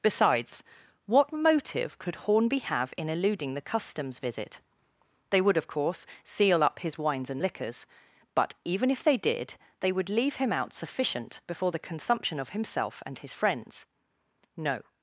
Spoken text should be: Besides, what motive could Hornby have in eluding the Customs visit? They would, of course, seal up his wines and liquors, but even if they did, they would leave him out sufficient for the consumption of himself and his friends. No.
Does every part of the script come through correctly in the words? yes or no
no